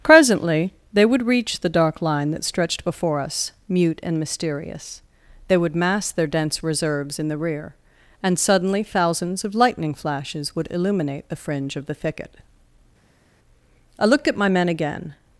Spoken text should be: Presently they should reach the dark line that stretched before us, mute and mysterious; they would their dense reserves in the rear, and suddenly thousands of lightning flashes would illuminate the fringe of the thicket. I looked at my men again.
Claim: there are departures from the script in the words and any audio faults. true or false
true